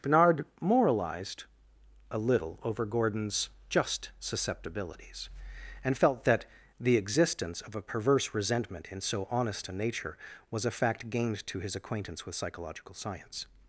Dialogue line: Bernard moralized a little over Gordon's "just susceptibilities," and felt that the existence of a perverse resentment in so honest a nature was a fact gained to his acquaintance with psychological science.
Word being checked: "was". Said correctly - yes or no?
yes